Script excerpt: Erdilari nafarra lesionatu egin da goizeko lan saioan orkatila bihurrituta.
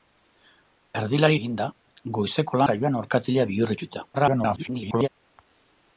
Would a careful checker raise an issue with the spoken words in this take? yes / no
yes